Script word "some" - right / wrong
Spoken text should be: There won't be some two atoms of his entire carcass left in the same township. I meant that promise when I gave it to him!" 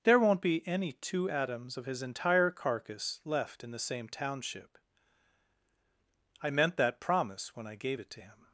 wrong